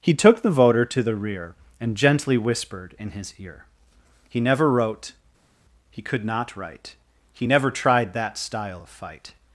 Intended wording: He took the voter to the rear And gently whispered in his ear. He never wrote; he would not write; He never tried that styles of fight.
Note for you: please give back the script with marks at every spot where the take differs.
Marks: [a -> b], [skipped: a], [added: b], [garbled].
He took the voter to the rear And gently whispered in his ear. He never wrote; he [would -> could] not write; He never tried that [styles -> style] of fight.